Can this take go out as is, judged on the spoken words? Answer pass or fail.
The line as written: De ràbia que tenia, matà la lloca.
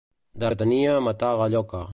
fail